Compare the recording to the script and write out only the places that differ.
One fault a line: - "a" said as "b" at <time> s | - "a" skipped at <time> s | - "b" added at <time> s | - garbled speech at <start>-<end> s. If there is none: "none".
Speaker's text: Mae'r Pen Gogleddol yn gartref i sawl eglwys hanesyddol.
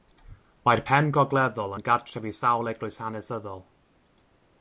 none